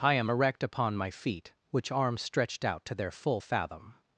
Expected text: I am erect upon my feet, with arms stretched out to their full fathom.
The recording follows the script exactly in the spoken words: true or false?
false